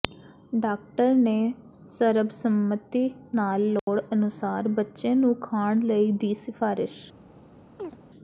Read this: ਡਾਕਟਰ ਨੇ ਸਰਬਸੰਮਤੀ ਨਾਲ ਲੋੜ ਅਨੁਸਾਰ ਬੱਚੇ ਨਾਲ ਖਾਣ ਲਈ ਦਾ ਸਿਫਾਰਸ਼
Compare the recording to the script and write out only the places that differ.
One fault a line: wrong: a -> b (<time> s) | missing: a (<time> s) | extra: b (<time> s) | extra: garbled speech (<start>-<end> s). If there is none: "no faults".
wrong: ਨਾਲ -> ਨੂੰ (5.1 s)
wrong: ਦਾ -> ਦੀ (6.1 s)